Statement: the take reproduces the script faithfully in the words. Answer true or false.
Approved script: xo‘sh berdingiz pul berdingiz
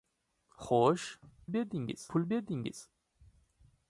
true